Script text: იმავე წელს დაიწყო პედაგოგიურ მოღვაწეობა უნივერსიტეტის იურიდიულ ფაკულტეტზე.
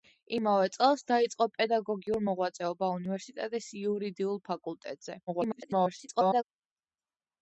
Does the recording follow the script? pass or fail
fail